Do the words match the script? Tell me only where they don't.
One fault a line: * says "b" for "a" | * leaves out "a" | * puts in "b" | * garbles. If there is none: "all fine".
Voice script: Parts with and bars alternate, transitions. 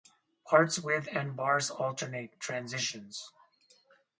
all fine